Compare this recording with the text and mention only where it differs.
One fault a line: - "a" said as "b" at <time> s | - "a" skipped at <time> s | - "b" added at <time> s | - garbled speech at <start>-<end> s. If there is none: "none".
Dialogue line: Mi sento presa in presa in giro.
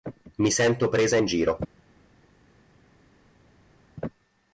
- "presa in" skipped at 1.2 s